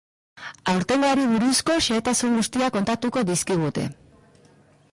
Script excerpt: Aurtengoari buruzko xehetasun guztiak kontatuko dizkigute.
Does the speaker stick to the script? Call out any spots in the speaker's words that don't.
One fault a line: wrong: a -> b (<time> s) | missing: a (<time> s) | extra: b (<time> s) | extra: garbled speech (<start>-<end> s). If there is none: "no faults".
no faults